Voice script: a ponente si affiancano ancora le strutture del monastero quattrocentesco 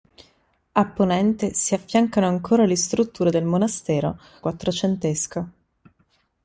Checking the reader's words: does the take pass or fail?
pass